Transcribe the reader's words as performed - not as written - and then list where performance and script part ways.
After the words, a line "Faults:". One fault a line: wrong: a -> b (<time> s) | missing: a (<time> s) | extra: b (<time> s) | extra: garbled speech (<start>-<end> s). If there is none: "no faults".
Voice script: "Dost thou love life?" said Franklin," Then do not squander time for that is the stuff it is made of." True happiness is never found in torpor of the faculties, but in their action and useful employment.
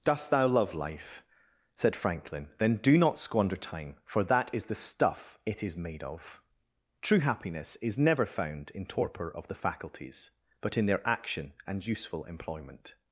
"Dost thou love life?" said Franklin," Then do not squander time for that is the stuff it is made of." True happiness is never found in torpor of the faculties, but in their action and useful employment.
Faults:
no faults